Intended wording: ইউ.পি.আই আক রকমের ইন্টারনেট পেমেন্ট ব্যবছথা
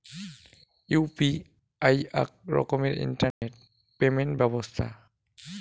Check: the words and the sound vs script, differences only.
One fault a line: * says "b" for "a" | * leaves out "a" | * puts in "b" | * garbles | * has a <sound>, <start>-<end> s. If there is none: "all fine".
* has a dropout, 3.3-3.4 s